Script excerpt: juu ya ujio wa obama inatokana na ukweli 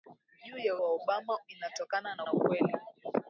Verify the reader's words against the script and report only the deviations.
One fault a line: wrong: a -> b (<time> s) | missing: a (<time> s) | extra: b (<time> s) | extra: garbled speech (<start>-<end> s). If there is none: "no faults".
missing: ujio (0.8 s)
extra: na (2.2 s)